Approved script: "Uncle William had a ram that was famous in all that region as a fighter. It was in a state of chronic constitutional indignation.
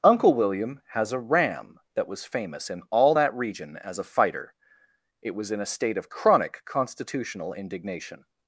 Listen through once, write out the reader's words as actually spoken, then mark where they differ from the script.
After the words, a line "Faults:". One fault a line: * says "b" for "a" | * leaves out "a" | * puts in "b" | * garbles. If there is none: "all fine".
"Uncle William has a ram that was famous in all that region as a fighter. It was in a state of chronic constitutional indignation.
Faults:
* says "has" for "had"